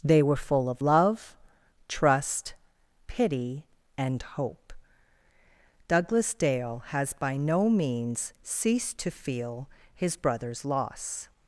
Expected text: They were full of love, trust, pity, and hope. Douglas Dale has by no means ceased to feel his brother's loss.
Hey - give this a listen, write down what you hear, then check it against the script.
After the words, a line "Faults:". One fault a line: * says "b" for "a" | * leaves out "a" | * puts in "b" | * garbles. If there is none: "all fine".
They were full of love, trust, pity, and hope. Douglas Dale has by no means ceased to feel his brother's loss.
Faults:
all fine